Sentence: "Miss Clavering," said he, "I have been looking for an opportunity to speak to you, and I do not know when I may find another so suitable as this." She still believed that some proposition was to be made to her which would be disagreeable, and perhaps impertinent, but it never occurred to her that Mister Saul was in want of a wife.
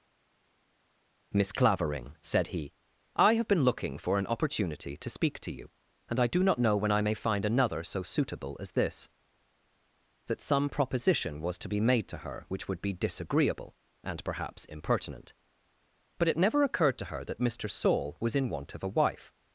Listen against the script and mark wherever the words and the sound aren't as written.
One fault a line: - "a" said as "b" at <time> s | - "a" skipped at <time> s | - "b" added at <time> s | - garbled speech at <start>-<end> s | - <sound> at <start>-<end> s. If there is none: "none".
- "She still believed" skipped at 9.1 s